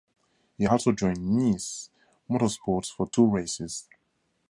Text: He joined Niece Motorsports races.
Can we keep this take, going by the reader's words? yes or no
no